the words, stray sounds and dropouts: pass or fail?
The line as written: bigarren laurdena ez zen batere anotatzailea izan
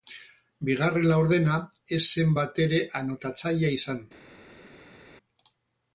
pass